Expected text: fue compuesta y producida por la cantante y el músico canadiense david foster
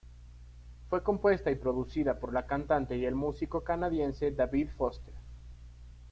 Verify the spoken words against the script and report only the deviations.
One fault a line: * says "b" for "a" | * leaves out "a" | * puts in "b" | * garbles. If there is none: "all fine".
all fine